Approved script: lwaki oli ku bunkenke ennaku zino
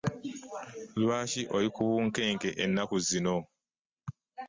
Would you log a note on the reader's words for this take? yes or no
no